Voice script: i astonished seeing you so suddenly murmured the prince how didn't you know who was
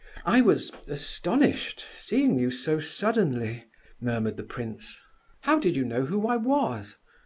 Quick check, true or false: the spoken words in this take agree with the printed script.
false